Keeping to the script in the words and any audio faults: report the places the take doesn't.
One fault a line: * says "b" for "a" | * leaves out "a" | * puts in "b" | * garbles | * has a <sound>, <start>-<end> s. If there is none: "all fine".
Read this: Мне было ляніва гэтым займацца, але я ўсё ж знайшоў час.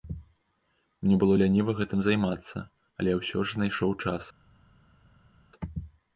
all fine